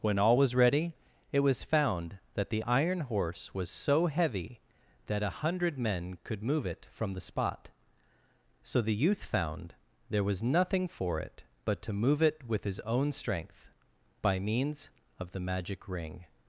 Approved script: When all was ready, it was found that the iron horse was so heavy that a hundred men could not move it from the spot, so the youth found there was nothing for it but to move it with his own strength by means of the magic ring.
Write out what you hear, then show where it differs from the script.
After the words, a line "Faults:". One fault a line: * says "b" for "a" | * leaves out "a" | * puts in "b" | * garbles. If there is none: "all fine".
When all was ready, it was found that the iron horse was so heavy that a hundred men could move it from the spot, so the youth found there was nothing for it but to move it with his own strength by means of the magic ring.
Faults:
* leaves out "not"